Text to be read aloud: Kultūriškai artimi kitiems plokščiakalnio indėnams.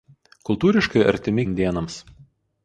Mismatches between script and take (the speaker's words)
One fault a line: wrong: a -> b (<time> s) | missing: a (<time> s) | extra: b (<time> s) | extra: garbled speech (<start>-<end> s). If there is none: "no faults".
missing: kitiems plokščiakalnio (1.4 s)